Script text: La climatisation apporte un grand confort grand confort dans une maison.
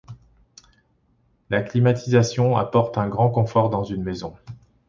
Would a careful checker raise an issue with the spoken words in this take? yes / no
yes